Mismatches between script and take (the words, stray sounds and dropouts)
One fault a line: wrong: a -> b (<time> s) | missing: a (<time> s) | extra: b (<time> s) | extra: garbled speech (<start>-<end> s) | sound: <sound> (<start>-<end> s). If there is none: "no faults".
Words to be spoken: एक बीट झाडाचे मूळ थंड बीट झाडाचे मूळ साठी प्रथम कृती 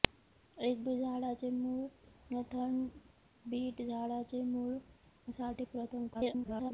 extra: garbled speech (6.1-6.7 s)